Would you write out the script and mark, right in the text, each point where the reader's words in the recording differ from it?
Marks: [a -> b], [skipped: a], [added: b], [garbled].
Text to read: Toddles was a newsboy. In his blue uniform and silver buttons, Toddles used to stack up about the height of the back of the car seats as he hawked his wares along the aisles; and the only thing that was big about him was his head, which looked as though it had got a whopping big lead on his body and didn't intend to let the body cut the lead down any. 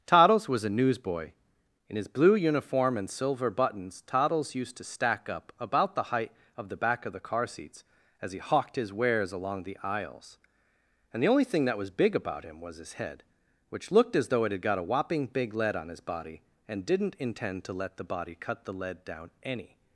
Toddles was a newsboy. In his blue uniform and silver buttons, Toddles used to stack up about the height of the back of the car seats as he hawked his wares along the aisles; and the only thing that was big about him was his head, which looked as though it had got a whopping big lead on his body and didn't intend to let the body cut the lead down any.